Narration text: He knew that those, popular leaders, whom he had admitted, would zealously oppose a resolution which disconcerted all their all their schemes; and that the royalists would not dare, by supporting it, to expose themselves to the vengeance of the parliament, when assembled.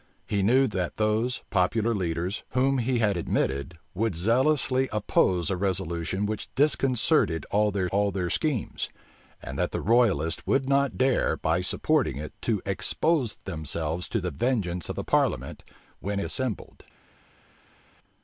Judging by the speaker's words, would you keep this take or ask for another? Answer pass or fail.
pass